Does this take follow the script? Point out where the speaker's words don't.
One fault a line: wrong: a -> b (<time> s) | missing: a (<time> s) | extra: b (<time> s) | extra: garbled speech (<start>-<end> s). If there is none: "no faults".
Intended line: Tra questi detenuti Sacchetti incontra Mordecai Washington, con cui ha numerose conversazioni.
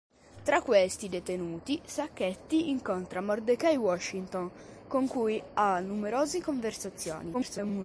extra: garbled speech (7.3-7.8 s)